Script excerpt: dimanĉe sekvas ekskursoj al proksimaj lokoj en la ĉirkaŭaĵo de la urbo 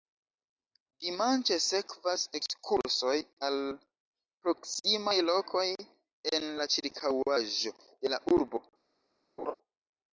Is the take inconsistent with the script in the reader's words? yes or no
no